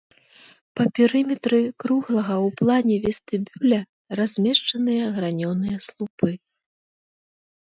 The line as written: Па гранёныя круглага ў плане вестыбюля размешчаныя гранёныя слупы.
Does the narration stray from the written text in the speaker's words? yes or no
yes